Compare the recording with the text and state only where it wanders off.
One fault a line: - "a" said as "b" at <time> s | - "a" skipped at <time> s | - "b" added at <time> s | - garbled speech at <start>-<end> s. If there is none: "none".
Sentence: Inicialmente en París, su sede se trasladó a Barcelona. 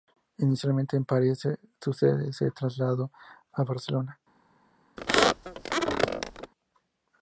none